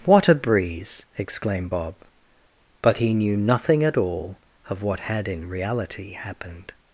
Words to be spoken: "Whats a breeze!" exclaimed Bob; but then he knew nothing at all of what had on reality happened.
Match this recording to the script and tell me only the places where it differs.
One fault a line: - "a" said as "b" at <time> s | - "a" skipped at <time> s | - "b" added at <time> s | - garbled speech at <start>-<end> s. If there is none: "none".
- "Whats" said as "What" at 0.0 s
- "then" skipped at 3.0 s
- "on" said as "in" at 5.3 s